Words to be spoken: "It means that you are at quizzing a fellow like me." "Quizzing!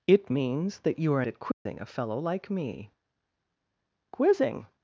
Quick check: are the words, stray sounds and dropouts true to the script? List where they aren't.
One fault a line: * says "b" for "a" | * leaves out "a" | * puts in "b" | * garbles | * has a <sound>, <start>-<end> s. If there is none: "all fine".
* has a dropout, 1.5-1.7 s